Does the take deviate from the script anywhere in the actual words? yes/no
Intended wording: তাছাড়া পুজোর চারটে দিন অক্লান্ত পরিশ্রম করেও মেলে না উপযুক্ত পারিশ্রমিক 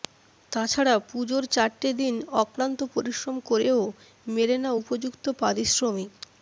no